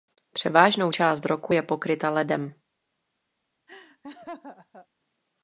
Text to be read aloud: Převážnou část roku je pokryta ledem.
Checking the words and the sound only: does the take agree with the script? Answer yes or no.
no